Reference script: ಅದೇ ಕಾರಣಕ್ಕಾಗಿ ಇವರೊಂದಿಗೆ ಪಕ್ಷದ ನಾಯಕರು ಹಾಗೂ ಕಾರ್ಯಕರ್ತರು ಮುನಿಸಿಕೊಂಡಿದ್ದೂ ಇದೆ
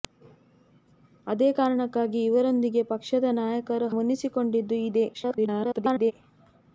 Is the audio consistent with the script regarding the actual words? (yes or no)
no